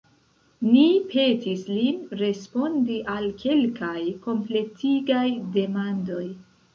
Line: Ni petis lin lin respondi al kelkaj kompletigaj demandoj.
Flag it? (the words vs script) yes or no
yes